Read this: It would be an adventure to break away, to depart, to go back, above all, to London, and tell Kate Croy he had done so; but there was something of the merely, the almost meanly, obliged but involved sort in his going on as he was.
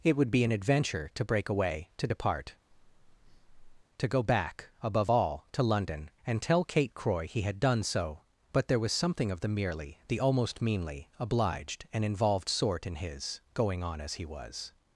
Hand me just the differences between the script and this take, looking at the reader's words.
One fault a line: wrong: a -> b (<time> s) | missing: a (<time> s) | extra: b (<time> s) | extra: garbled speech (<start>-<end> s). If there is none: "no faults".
wrong: but -> and (11.9 s)